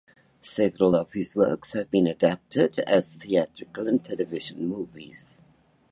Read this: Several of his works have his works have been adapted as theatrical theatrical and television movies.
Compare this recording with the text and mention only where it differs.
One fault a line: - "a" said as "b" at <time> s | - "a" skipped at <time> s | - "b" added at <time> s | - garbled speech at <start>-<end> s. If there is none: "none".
- "his works have" skipped at 1.9 s
- "theatrical" skipped at 3.9 s